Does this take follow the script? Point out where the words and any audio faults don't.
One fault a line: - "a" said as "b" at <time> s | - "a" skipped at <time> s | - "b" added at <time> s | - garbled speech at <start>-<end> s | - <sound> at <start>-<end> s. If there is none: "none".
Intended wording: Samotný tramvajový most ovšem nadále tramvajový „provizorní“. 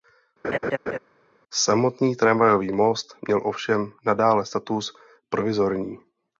- laugh at 0.4-1.0 s
- "měl" added at 3.3 s
- "tramvajový" said as "status" at 4.4 s